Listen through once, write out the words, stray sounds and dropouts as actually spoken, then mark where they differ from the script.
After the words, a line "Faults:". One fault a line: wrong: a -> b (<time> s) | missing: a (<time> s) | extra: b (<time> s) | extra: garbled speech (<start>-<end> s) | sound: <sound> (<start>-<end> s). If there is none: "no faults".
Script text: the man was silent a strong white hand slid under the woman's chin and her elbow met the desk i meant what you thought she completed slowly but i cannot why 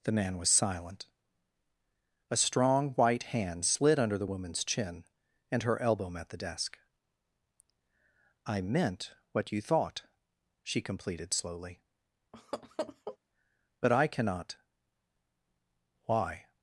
the man was silent a strong white hand slid under the woman's chin and her elbow met the desk i meant what you thought she completed slowly but i cannot why
Faults:
sound: laugh (12.3-13.2 s)